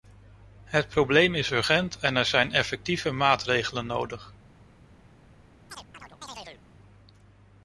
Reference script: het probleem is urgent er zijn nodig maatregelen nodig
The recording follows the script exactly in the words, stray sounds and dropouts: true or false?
false